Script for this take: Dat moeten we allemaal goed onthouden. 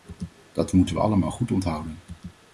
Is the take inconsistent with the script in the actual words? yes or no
no